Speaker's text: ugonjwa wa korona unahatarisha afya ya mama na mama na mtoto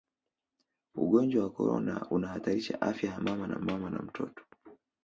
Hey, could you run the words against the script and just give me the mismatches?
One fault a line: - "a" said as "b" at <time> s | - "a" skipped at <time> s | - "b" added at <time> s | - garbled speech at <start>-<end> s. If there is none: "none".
none